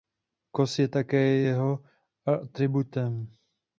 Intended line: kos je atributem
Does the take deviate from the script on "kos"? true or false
false